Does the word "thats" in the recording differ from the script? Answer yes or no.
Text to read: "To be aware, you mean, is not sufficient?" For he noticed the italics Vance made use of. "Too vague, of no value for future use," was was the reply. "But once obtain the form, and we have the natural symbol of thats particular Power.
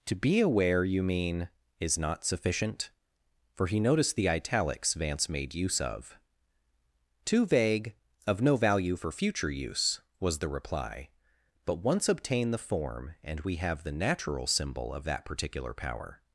yes